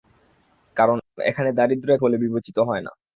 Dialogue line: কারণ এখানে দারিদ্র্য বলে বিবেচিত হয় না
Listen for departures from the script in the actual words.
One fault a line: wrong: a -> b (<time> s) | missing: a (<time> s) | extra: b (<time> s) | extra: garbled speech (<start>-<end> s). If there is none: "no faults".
no faults